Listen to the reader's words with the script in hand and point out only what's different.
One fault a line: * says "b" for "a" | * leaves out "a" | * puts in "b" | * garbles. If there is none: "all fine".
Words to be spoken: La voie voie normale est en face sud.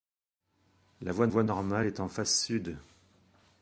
all fine